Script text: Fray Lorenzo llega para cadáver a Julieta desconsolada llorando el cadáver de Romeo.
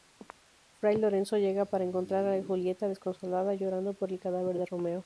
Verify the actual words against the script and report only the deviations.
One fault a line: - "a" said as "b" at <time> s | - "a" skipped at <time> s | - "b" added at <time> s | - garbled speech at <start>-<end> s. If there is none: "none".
- "cadáver" said as "encontrar" at 1.8 s
- "por" added at 3.9 s